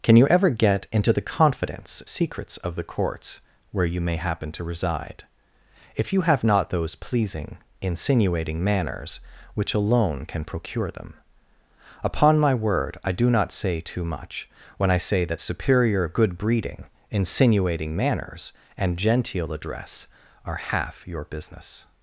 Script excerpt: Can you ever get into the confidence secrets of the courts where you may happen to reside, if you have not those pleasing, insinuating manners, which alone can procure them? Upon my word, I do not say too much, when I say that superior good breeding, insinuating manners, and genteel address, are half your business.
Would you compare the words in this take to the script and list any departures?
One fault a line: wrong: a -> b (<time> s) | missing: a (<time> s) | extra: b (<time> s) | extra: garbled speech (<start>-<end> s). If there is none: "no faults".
no faults